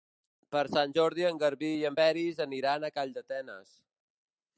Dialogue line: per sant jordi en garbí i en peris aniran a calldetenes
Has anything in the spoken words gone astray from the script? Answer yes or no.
no